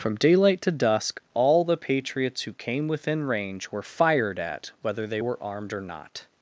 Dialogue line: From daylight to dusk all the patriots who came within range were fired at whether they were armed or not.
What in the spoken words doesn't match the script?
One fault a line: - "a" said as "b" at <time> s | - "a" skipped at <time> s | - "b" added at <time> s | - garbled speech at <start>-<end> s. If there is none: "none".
none